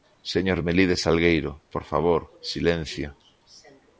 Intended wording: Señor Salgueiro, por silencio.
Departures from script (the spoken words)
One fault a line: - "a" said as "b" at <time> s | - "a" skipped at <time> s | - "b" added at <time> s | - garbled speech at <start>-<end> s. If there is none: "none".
- "Melide" added at 0.6 s
- "favor" added at 1.8 s